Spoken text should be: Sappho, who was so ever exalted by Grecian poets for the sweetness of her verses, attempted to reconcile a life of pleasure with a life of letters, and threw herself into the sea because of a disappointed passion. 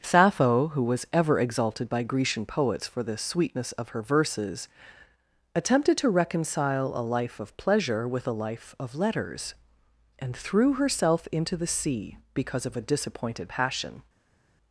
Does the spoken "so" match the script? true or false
false